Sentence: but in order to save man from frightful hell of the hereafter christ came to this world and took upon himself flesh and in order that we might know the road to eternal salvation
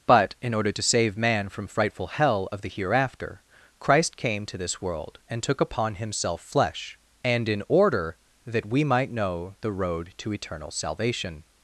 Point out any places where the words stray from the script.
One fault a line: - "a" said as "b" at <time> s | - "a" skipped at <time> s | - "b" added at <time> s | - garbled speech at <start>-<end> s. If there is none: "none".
none